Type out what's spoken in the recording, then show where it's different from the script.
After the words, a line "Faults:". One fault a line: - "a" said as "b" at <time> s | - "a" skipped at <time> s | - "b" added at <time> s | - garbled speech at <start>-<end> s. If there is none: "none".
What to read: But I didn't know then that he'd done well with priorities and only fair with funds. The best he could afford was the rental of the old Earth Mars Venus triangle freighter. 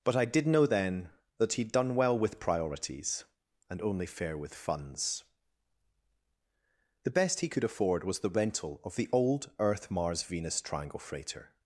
But I did know then that he'd done well with priorities and only fair with funds. The best he could afford was the rental of the old Earth Mars Venus triangle freighter.
Faults:
- "didn't" said as "did" at 0.2 s